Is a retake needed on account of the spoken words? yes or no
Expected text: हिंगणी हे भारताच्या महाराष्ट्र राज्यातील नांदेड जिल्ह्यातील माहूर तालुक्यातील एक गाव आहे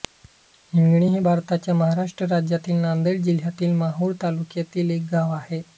no